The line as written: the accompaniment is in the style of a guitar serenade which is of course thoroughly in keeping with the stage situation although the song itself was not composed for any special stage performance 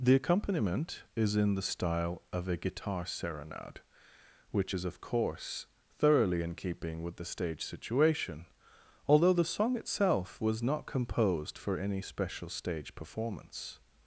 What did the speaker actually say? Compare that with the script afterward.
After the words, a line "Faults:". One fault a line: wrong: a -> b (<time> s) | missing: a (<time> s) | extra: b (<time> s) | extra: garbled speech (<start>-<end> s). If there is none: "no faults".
the accompaniment is in the style of a guitar serenade which is of course thoroughly in keeping with the stage situation although the song itself was not composed for any special stage performance
Faults:
no faults